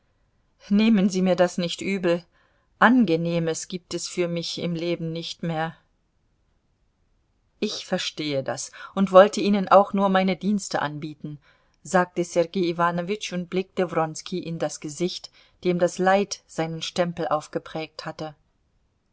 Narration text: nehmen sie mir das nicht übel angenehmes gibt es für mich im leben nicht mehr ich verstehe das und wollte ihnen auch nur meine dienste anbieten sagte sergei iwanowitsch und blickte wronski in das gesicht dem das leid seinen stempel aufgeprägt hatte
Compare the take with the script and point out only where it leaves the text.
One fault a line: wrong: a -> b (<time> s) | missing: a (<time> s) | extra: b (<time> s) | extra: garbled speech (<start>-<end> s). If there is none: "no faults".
no faults